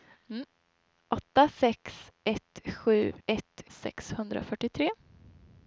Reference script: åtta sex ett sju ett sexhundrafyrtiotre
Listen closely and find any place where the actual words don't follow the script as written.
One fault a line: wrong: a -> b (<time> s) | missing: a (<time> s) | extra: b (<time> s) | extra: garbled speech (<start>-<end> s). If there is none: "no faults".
no faults